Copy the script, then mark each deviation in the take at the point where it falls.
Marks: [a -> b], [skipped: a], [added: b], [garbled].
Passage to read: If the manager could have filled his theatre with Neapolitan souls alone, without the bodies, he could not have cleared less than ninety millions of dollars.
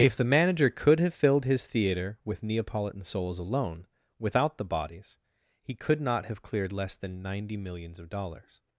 If the manager could have filled his theatre with Neapolitan souls alone, without the bodies, he could not have cleared less than ninety millions of dollars.